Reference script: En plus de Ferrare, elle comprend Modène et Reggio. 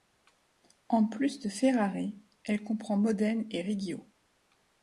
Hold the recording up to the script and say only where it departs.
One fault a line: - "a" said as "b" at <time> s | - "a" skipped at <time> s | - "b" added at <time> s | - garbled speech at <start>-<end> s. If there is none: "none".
none